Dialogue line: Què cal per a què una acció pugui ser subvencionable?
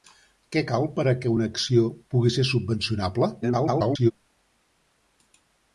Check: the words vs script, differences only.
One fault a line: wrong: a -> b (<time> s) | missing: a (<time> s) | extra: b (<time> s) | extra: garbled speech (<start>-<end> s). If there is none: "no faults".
extra: garbled speech (3.4-4.1 s)